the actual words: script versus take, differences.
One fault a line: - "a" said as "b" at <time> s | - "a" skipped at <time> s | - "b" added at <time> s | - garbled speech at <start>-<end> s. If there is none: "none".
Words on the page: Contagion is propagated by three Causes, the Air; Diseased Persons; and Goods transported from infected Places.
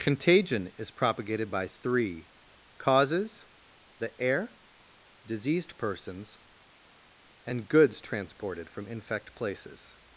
- "infected" said as "infect" at 8.9 s